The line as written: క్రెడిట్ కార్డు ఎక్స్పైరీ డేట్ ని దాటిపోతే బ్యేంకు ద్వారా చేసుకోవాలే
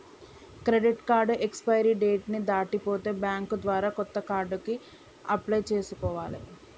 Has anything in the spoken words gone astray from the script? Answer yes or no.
yes